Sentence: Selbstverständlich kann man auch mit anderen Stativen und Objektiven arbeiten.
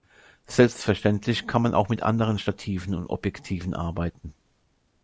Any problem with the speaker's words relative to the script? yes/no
no